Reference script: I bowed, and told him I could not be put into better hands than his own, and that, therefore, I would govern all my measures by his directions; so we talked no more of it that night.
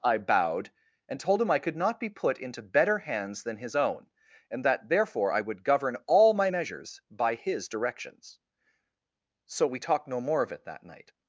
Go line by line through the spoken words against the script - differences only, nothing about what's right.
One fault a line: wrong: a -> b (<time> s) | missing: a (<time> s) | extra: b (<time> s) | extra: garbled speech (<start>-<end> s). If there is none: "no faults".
no faults